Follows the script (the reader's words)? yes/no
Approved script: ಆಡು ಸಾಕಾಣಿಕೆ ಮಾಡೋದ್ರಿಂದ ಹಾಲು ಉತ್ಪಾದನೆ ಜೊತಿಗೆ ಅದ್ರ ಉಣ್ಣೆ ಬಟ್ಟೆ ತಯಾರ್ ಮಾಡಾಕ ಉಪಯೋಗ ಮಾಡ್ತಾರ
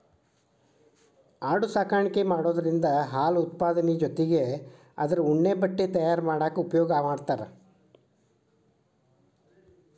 yes